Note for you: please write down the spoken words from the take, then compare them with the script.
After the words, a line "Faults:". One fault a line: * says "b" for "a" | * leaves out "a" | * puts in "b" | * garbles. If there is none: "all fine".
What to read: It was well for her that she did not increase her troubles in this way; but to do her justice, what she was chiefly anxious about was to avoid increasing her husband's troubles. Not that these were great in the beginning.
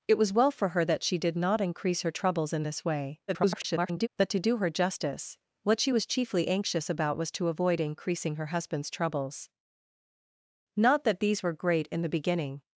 It was well for her that she did not increase her troubles in this way; [garbled] but to do her justice, what she was chiefly anxious about was to avoid increasing her husband's troubles. Not that these were great in the beginning.
Faults:
* garbles